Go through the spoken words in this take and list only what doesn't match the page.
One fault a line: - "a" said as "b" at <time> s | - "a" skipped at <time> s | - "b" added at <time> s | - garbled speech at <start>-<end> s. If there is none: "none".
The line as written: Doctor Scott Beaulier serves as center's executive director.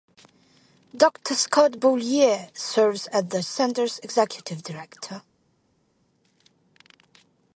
- "the" added at 3.3 s